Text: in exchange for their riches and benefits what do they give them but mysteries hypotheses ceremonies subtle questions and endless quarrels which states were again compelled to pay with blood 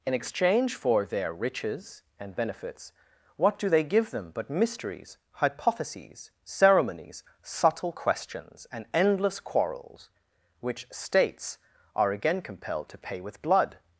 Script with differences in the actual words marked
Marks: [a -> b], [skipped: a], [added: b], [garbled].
in exchange for their riches and benefits what do they give them but mysteries hypotheses ceremonies subtle questions and endless quarrels which states [were -> are] again compelled to pay with blood